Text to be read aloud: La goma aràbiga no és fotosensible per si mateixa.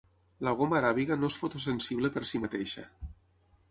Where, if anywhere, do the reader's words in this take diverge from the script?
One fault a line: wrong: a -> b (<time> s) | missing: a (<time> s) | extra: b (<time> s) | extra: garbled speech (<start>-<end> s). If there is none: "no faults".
no faults